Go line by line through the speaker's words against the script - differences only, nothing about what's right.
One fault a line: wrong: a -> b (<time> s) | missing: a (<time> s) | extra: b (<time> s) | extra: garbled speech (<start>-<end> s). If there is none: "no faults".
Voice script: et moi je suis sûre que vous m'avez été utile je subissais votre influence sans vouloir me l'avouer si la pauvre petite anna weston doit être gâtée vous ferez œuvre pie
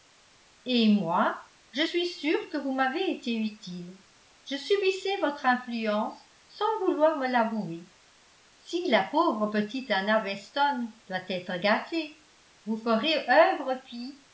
no faults